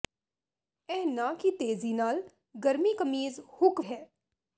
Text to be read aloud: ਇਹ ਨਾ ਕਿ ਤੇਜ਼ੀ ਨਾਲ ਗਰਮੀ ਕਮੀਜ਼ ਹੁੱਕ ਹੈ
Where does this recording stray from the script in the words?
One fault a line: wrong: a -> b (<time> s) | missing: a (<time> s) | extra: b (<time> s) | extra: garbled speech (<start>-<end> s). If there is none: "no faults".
no faults